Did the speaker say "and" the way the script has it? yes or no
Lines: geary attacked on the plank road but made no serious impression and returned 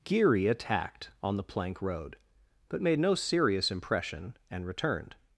yes